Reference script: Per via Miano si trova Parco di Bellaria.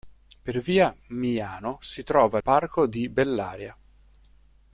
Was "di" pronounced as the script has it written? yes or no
yes